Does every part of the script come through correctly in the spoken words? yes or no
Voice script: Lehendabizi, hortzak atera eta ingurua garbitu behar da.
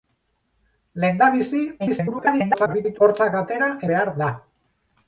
no